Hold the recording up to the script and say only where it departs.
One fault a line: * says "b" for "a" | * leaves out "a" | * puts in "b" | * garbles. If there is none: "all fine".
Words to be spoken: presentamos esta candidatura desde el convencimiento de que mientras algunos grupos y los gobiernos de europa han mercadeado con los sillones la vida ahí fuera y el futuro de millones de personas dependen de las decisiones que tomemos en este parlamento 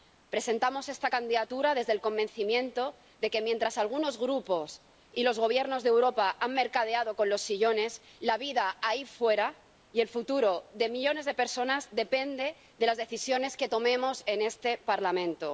all fine